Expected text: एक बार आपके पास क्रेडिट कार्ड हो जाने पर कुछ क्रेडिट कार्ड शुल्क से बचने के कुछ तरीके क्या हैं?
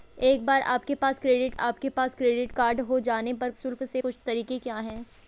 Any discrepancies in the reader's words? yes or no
yes